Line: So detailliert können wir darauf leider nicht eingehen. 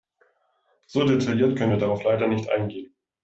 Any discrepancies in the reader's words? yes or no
no